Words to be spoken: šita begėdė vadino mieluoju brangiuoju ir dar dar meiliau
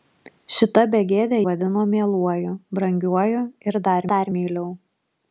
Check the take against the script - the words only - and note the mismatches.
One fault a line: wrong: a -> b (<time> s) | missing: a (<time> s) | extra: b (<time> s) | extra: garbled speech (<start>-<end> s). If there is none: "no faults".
no faults